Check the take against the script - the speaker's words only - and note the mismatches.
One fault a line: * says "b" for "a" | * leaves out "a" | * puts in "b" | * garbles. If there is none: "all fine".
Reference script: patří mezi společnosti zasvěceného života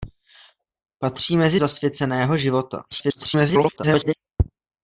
* leaves out "společnosti"
* garbles